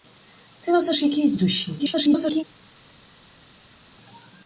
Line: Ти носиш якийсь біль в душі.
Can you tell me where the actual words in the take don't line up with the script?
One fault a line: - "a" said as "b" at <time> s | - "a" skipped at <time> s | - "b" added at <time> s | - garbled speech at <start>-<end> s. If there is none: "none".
- "біль" skipped at 1.4 s
- garbled speech at 1.8-2.4 s